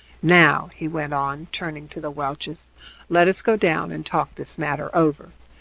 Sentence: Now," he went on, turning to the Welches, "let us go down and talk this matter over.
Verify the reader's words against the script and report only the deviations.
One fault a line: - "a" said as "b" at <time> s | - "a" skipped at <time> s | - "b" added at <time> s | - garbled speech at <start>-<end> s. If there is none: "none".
none